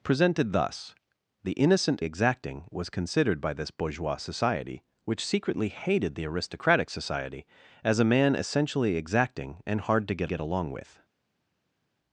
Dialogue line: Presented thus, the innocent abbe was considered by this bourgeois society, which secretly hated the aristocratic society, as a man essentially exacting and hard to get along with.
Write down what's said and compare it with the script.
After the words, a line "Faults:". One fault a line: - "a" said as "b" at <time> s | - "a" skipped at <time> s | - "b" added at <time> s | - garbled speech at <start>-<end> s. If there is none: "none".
Presented thus, the innocent exacting was considered by this bourgeois society, which secretly hated the aristocratic society, as a man essentially exacting and hard to get get along with.
Faults:
- "abbe" said as "exacting" at 2.0 s
- "get" added at 10.3 s